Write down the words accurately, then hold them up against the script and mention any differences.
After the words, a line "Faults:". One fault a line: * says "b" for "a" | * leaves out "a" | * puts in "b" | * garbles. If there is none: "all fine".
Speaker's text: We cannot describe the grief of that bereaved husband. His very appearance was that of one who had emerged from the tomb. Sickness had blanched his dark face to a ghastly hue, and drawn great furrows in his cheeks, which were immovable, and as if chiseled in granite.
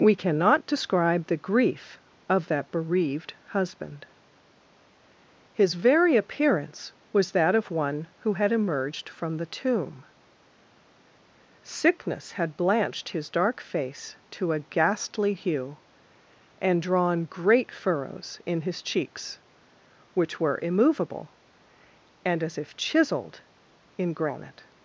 We cannot describe the grief of that bereaved husband. His very appearance was that of one who had emerged from the tomb. Sickness had blanched his dark face to a ghastly hue, and drawn great furrows in his cheeks, which were immovable, and as if chiseled in granite.
Faults:
all fine